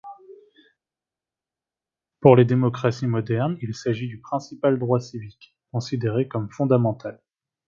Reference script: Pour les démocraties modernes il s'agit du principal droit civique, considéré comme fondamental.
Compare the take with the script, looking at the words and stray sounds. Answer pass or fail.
pass